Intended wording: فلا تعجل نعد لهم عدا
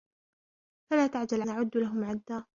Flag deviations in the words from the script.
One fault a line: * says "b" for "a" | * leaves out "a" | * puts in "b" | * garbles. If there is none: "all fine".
all fine